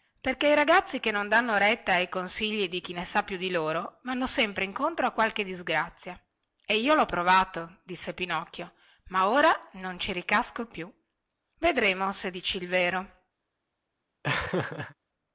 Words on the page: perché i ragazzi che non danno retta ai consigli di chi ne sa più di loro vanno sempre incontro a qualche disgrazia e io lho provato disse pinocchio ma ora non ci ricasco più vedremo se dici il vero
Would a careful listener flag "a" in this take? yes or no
no